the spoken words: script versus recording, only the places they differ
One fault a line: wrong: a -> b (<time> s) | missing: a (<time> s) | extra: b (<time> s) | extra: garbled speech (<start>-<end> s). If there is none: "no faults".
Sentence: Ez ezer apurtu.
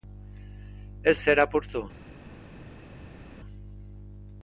no faults